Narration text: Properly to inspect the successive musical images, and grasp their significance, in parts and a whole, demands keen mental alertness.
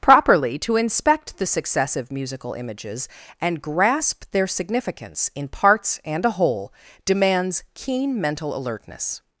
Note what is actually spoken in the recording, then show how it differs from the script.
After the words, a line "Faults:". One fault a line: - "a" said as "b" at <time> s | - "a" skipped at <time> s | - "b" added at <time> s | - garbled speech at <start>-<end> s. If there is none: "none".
Properly to inspect the successive musical images, and grasp their significance, in parts and a whole, demands keen mental alertness.
Faults:
none